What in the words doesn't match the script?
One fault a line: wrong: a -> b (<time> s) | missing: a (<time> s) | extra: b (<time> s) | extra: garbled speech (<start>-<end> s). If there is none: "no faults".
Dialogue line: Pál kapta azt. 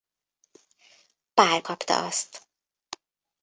no faults